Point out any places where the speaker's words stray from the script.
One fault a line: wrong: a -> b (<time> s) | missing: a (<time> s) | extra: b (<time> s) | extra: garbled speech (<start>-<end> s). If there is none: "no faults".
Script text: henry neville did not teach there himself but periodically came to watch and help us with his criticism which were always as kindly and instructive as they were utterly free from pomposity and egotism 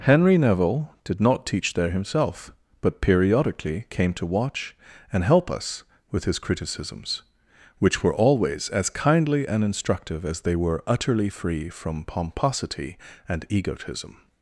wrong: criticism -> criticisms (6.4 s)